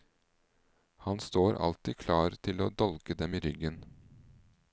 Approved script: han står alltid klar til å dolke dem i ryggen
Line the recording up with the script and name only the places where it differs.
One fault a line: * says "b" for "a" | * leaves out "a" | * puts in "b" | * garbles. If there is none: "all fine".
all fine